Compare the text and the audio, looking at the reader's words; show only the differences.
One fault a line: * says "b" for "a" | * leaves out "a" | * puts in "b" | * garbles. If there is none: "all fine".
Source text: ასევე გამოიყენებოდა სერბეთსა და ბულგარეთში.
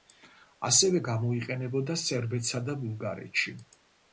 all fine